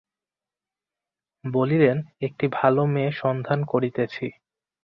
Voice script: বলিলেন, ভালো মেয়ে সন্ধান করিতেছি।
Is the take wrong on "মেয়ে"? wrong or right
right